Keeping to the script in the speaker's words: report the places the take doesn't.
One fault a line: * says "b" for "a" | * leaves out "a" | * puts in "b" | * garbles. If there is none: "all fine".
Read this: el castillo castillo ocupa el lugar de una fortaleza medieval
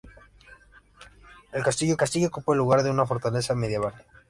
all fine